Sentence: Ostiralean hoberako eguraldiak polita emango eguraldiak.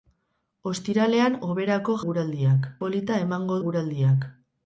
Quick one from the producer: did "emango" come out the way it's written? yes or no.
yes